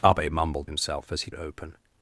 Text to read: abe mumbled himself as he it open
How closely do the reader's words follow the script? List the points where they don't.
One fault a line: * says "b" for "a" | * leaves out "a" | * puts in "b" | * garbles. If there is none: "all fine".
all fine